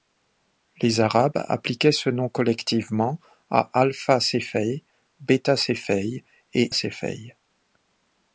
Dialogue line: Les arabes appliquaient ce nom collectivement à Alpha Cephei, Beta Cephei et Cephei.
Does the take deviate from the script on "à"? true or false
false